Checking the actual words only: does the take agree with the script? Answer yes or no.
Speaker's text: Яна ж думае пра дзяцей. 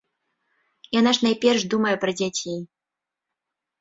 no